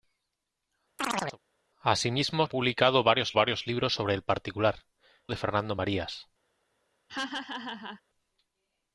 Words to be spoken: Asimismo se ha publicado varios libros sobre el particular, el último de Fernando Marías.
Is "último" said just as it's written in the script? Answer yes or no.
no